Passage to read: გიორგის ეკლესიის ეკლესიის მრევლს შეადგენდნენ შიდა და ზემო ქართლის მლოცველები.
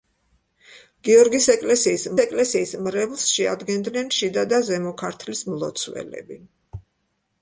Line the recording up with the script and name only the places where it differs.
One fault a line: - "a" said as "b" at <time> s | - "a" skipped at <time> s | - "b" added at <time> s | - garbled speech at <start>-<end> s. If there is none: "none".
none